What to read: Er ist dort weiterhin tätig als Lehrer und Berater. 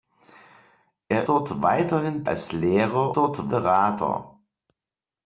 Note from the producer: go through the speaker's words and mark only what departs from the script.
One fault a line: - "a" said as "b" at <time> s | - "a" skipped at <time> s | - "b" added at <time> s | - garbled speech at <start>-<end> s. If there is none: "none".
- "ist" skipped at 1.3 s
- "tätig" skipped at 2.3 s
- "und" said as "dort" at 3.2 s